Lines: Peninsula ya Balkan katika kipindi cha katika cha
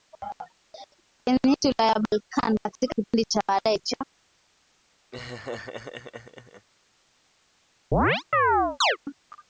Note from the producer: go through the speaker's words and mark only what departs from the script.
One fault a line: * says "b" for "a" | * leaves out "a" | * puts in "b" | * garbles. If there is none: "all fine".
* says "baadaye" for "katika"